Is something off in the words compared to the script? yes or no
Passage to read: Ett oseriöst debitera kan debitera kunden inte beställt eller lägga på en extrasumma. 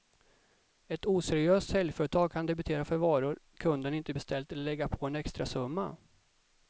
yes